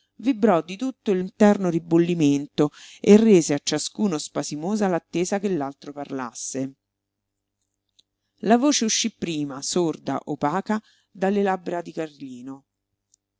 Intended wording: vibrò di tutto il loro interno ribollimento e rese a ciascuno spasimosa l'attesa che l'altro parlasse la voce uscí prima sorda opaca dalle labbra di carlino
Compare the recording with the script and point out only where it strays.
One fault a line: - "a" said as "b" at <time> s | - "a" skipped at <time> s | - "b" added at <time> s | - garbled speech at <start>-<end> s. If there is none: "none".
- "loro" skipped at 1.2 s